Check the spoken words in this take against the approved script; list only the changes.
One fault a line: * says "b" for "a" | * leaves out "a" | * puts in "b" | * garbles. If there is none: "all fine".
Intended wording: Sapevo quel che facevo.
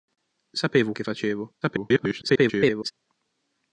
* leaves out "quel"
* garbles